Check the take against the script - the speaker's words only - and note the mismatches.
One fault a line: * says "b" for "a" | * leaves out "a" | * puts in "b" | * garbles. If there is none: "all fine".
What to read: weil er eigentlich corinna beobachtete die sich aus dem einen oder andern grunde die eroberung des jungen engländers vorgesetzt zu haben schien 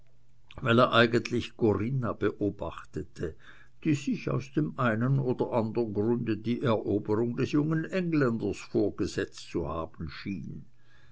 all fine